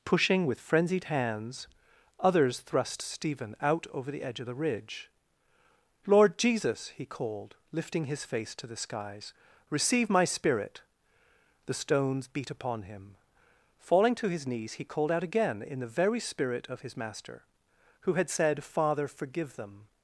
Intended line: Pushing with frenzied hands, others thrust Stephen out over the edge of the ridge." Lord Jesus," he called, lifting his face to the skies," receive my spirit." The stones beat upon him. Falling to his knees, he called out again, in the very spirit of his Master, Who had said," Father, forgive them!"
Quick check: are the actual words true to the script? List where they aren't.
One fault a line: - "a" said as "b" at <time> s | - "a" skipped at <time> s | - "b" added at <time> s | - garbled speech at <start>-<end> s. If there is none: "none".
none